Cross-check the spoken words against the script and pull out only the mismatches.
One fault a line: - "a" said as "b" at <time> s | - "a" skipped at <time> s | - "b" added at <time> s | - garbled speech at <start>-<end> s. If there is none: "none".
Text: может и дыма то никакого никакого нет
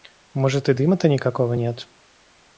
- "никакого" skipped at 1.5 s